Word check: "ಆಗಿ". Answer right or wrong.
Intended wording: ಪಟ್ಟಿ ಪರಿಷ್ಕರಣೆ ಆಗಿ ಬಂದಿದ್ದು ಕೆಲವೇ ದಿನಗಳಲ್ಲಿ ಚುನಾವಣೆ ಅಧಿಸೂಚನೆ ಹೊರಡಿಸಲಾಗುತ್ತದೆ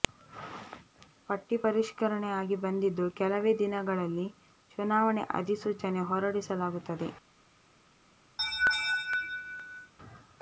right